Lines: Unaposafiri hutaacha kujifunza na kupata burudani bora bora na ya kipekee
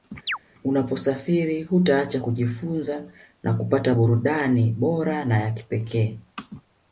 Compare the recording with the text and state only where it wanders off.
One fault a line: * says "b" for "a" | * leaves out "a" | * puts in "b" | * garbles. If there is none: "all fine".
* leaves out "bora"